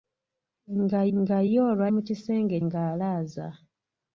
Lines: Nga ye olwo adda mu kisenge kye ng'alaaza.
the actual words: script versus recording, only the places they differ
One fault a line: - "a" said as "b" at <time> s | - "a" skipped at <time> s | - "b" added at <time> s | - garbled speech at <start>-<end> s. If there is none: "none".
- "nga" added at 1.2 s
- "adda" skipped at 1.8 s
- "kye" skipped at 2.6 s